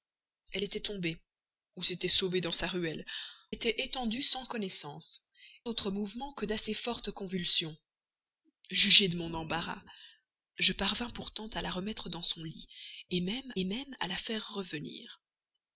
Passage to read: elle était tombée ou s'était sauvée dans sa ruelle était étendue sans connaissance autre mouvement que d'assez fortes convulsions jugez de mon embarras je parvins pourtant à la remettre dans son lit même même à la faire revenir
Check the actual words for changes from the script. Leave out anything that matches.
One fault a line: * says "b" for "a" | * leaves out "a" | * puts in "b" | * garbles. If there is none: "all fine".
all fine